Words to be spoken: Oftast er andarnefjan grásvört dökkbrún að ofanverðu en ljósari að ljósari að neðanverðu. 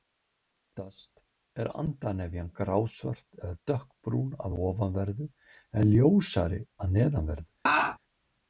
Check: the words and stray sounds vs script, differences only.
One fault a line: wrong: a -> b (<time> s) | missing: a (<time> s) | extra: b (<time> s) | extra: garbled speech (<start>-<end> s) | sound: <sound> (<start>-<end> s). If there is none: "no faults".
extra: eða (3.4 s)
missing: ljósari að (7.0 s)
sound: laugh (7.7-8.0 s)